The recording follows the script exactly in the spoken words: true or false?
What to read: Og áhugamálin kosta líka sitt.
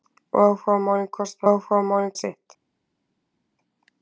false